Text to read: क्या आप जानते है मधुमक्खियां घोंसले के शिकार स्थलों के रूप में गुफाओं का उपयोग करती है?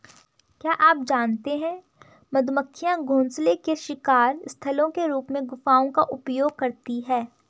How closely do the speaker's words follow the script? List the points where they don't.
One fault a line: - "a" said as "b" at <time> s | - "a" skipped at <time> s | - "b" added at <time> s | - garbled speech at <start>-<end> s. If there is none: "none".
none